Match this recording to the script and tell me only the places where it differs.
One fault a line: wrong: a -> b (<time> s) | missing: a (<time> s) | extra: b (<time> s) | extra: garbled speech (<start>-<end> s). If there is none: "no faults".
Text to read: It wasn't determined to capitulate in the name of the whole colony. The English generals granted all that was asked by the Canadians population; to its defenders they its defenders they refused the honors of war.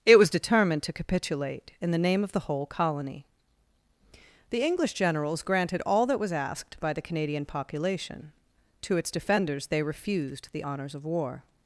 wrong: wasn't -> was (0.2 s)
wrong: Canadians -> Canadian (7.0 s)
missing: its defenders they (9.8 s)